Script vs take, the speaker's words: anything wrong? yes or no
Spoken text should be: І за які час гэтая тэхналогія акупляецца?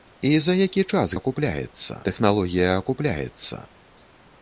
yes